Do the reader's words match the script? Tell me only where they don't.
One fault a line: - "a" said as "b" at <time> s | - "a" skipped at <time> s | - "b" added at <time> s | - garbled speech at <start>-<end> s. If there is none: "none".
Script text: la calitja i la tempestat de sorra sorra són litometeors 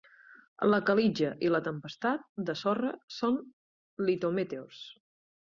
- "sorra" skipped at 3.0 s